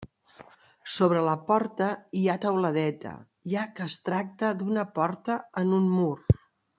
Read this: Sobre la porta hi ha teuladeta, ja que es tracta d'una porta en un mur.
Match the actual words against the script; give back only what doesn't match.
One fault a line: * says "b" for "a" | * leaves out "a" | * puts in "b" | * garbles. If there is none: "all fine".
all fine